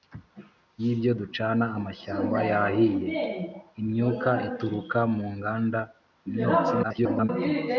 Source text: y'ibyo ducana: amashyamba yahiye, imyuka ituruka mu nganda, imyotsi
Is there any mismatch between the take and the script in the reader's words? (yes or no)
yes